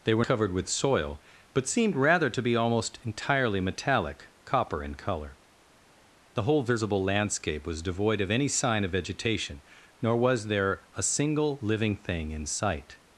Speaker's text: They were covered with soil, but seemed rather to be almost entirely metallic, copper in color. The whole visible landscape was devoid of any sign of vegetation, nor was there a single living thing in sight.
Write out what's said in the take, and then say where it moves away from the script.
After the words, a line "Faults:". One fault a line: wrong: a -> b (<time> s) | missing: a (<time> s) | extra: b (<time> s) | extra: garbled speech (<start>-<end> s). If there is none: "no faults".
They were covered with soil, but seemed rather to be almost entirely metallic, copper in color. The whole visible landscape was devoid of any sign of vegetation, nor was there a single living thing in sight.
Faults:
no faults